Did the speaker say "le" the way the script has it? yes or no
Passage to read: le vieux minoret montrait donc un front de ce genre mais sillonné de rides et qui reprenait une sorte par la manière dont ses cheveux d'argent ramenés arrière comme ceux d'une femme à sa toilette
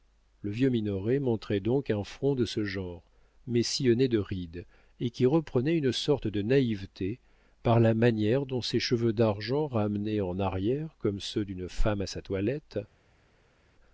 yes